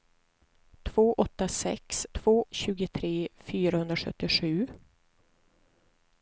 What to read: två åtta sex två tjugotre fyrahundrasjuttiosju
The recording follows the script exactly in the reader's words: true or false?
true